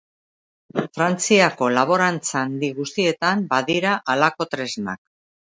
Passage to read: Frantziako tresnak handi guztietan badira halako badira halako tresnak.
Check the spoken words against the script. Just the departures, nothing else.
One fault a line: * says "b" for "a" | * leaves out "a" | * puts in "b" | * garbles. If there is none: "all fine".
* says "laborantza" for "tresnak"
* leaves out "badira halako"